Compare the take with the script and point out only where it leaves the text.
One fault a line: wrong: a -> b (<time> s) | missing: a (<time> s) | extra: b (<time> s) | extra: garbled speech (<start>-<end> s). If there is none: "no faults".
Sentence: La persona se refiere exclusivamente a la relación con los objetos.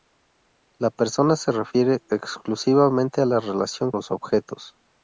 missing: con (3.9 s)